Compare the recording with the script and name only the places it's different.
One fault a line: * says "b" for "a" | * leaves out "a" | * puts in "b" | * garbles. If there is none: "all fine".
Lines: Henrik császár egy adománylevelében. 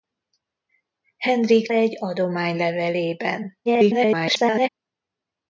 * leaves out "császár"
* garbles